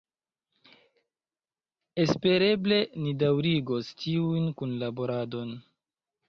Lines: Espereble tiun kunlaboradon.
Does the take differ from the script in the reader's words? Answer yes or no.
yes